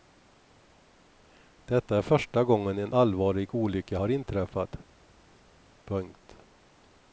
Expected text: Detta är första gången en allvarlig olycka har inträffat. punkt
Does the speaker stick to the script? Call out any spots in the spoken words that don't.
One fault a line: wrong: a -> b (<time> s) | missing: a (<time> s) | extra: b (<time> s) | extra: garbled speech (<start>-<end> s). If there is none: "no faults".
no faults